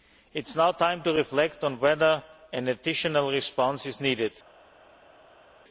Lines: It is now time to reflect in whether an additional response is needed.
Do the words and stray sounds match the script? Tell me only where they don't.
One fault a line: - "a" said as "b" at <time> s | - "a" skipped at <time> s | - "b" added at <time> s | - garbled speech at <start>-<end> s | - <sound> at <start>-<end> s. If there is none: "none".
- "in" said as "on" at 1.6 s